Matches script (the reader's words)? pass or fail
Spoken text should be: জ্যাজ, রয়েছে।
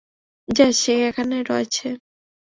fail